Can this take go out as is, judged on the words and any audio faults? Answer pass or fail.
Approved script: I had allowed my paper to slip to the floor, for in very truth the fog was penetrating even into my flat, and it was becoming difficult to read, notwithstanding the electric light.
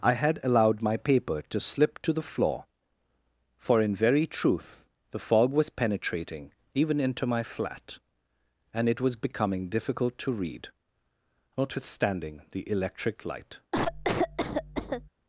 fail